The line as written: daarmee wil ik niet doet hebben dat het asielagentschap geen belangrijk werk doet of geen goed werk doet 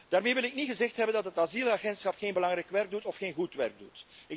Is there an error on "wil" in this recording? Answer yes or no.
no